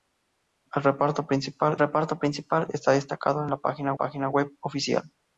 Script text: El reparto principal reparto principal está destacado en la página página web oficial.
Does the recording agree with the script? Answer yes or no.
yes